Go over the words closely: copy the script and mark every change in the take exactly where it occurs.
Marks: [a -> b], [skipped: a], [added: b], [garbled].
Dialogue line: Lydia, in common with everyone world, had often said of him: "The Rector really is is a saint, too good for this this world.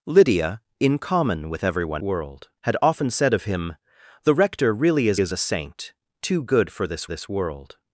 Lydia, in common with everyone world, had often said of him: "The Rector really is is a saint, too good for this this world.